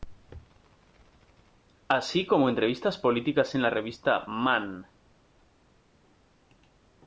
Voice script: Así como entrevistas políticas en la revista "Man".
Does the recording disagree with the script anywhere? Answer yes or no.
no